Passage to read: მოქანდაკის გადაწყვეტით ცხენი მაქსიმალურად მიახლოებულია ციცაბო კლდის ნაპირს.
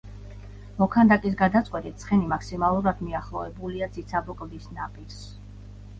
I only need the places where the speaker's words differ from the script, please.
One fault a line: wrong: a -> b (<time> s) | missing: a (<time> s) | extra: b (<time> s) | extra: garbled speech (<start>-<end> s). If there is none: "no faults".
no faults